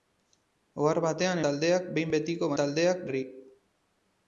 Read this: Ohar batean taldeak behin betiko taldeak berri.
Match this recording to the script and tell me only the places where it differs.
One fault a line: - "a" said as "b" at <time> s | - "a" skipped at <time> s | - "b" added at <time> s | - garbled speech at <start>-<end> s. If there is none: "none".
none